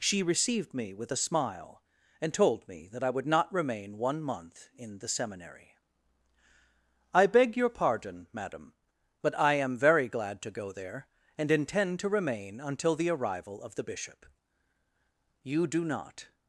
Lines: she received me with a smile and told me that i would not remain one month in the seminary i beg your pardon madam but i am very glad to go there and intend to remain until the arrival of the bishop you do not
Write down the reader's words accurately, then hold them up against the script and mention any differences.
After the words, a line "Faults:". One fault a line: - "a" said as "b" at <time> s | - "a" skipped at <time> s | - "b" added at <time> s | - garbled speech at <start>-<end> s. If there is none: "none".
she received me with a smile and told me that i would not remain one month in the seminary i beg your pardon madam but i am very glad to go there and intend to remain until the arrival of the bishop you do not
Faults:
none